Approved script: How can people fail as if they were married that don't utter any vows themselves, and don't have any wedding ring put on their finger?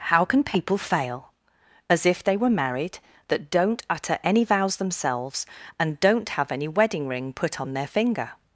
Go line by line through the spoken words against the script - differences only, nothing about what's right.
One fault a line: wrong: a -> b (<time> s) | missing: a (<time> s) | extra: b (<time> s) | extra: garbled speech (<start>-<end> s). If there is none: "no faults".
no faults